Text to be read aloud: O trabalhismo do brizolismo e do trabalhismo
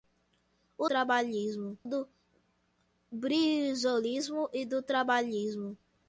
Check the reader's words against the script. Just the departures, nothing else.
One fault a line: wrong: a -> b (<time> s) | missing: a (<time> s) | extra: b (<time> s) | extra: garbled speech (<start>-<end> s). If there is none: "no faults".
no faults